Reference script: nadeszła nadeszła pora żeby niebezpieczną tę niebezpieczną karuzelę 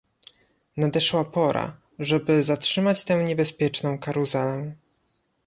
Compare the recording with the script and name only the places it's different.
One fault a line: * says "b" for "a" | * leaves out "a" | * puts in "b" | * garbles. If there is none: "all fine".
* leaves out "nadeszła"
* says "zatrzymać" for "niebezpieczną"